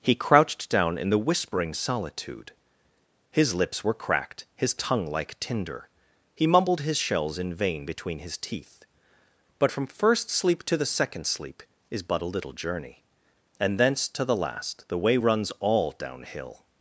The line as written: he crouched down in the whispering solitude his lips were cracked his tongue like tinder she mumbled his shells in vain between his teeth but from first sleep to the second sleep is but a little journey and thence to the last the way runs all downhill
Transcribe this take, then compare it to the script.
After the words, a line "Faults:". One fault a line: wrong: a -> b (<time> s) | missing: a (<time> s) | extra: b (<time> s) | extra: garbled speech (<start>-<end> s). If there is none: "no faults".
he crouched down in the whispering solitude his lips were cracked his tongue like tinder he mumbled his shells in vain between his teeth but from first sleep to the second sleep is but a little journey and thence to the last the way runs all downhill
Faults:
wrong: she -> he (6.3 s)